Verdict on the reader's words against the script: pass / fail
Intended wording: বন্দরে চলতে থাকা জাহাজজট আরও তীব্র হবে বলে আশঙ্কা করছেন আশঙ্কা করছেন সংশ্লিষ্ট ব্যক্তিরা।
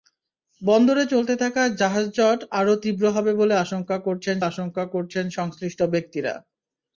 pass